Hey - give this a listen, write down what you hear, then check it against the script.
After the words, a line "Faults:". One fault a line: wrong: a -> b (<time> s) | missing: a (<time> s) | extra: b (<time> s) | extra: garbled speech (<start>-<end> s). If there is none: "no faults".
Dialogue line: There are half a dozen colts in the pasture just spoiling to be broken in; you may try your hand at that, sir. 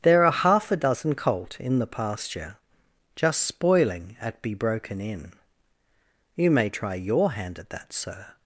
There are half a dozen colt in the pasture just spoiling at be broken in; you may try your hand at that, sir.
Faults:
wrong: colts -> colt (1.1 s)
wrong: to -> at (4.2 s)